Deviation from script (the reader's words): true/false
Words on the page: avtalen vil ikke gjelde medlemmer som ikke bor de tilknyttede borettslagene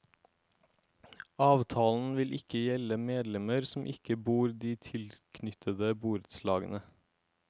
false